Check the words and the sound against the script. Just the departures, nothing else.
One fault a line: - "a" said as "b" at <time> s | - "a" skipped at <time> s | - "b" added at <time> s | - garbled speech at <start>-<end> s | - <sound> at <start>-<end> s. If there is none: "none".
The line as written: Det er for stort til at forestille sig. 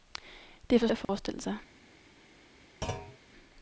- "stort til" skipped at 0.9 s
- dropout at 1.0-1.1 s
- thud at 2.8-3.2 s